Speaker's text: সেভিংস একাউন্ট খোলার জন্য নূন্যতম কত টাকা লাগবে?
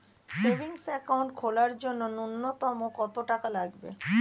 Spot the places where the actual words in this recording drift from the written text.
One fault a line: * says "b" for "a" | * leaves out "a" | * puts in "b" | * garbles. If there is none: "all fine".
all fine